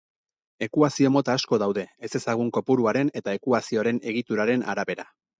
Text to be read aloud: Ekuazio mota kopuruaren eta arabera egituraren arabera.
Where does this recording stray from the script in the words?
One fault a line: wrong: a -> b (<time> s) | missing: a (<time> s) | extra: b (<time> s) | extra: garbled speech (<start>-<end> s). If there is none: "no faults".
extra: asko daude ezezagun (1.4 s)
wrong: arabera -> ekuazioaren (3.4 s)